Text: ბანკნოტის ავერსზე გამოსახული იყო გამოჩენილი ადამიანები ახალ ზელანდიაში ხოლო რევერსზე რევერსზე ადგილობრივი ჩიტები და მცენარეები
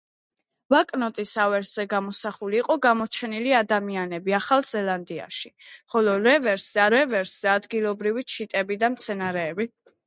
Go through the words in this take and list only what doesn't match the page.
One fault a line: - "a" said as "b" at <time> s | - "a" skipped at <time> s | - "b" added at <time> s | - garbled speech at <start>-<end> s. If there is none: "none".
none